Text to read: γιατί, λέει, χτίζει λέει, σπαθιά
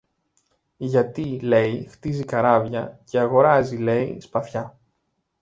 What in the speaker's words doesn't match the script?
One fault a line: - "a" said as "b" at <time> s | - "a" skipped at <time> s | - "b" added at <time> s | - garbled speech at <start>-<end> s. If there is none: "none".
- "καράβια και αγοράζει" added at 2.2 s